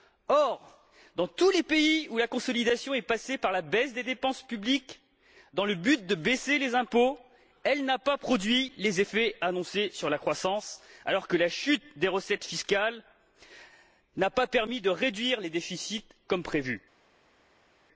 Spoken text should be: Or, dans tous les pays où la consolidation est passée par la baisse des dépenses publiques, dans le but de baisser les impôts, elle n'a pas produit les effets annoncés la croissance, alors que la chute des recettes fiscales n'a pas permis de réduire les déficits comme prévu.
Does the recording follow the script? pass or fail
fail